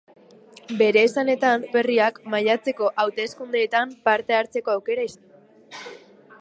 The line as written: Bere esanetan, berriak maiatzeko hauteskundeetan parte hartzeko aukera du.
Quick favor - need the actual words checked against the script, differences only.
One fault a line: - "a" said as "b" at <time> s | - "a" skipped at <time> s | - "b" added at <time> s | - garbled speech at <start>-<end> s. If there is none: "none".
none